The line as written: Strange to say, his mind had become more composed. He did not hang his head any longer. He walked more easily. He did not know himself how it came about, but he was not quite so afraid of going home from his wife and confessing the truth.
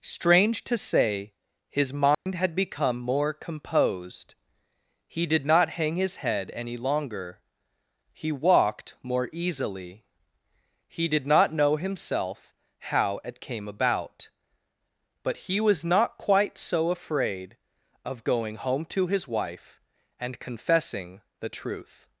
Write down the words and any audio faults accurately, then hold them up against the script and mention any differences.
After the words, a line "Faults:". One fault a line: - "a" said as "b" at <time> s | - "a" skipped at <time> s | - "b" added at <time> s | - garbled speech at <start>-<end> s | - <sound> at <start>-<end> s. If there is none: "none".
Strange to say, his mind had become more composed. He did not hang his head any longer. He walked more easily. He did not know himself how it came about, but he was not quite so afraid of going home to his wife and confessing the truth.
Faults:
- dropout at 2.1-2.3 s
- "from" said as "to" at 18.9 s